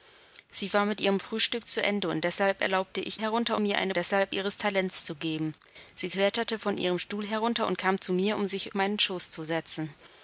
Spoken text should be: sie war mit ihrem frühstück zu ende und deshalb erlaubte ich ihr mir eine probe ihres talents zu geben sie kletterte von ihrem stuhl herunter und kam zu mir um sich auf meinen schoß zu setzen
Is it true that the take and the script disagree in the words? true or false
true